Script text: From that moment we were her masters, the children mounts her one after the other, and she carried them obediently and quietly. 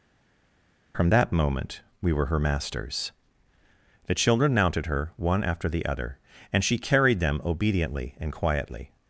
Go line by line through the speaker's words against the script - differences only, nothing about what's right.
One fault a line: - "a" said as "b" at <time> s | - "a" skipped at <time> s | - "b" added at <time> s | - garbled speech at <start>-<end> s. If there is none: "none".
- "mounts" said as "mounted" at 4.5 s